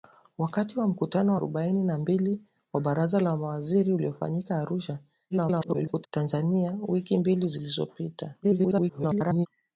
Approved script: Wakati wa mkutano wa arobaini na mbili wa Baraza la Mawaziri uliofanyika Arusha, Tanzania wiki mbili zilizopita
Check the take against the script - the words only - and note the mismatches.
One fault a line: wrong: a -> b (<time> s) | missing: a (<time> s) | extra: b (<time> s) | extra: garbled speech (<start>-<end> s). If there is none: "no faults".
missing: wa (1.4 s)
extra: garbled speech (5.3-6.1 s)
extra: garbled speech (8.4-9.5 s)